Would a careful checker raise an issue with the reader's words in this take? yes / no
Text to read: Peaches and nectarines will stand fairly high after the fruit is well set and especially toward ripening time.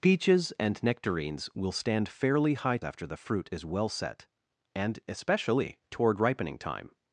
no